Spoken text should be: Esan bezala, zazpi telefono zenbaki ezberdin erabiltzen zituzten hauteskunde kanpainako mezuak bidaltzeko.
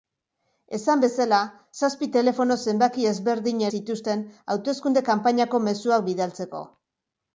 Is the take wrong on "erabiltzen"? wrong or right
wrong